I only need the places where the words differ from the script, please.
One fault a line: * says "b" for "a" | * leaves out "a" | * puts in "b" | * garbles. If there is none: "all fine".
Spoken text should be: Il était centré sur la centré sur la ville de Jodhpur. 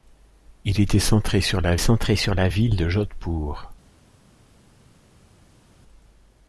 all fine